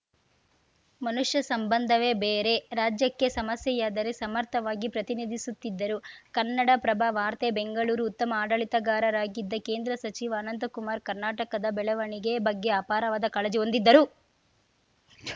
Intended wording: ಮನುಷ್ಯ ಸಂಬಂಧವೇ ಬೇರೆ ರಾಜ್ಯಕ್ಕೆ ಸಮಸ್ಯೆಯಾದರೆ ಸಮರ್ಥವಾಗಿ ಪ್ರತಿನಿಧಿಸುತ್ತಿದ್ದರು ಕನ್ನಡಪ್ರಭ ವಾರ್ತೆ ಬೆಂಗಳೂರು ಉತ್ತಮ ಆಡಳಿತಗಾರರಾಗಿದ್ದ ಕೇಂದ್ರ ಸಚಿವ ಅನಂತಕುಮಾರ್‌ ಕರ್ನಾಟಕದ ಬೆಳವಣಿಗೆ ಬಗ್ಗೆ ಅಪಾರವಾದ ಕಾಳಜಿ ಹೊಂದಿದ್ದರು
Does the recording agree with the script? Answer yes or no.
yes